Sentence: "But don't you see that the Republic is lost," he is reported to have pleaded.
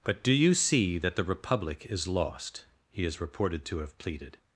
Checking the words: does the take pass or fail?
fail